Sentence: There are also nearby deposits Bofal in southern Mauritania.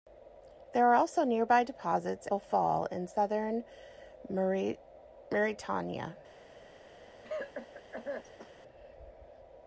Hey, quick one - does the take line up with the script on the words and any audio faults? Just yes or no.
no